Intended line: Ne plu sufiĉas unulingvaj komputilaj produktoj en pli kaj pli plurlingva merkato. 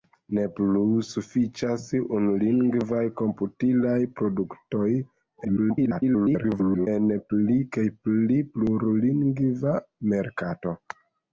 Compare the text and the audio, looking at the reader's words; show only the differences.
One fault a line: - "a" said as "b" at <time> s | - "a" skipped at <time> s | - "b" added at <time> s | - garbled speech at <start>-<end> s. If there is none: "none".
- garbled speech at 5.4-6.9 s